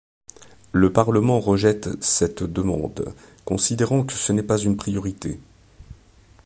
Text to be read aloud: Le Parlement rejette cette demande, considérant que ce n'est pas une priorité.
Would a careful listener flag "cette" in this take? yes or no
no